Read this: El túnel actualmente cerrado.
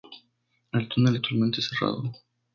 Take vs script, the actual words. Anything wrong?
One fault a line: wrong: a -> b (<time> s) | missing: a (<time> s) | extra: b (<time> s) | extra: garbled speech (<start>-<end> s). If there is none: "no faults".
no faults